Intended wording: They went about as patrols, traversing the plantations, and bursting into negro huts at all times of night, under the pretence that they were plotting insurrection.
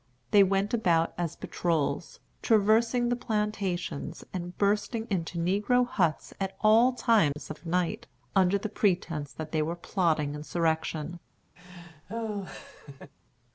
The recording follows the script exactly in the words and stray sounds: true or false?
false